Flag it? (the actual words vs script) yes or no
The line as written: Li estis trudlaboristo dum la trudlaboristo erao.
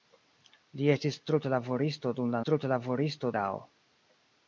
no